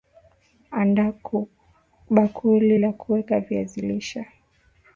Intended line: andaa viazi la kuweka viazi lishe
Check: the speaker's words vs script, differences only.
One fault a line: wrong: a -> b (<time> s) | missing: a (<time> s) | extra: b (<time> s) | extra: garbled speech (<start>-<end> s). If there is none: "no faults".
wrong: viazi -> bakuli (2.1 s)